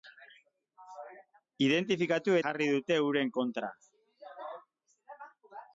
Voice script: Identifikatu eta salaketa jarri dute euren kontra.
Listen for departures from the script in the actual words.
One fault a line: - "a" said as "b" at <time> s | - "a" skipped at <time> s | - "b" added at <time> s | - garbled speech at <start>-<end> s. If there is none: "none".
- "eta salaketa" skipped at 2.4 s